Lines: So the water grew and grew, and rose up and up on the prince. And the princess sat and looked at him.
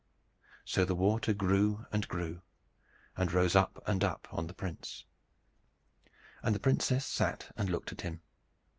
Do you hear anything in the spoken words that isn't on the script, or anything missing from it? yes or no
no